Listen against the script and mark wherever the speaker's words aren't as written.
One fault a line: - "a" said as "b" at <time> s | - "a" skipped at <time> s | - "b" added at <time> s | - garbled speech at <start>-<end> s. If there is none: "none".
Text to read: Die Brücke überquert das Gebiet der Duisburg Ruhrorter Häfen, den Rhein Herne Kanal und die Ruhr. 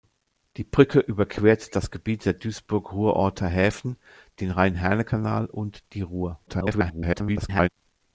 - garbled speech at 6.5-7.7 s